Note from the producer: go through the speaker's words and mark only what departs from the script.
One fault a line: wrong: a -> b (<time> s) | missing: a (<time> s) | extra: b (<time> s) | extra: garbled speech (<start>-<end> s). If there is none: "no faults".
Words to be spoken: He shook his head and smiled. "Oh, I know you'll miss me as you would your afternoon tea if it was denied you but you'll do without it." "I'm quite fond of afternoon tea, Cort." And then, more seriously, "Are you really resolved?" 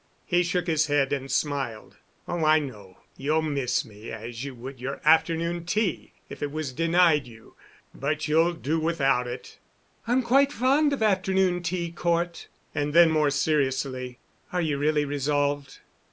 no faults